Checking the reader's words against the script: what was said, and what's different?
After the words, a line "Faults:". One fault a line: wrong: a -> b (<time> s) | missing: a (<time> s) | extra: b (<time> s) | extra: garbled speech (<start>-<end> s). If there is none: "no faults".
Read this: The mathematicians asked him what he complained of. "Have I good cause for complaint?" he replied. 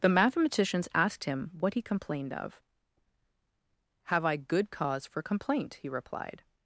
The mathematicians asked him what he complained of. "Have I good cause for complaint?" he replied.
Faults:
no faults